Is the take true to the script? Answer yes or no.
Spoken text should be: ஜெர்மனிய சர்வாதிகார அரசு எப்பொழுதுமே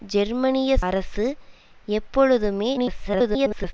no